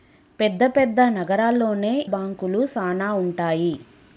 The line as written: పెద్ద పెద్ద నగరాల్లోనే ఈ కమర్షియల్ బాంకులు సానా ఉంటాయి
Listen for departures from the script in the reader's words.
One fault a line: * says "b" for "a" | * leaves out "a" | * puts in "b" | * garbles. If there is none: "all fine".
* leaves out "ఈ కమర్షియల్"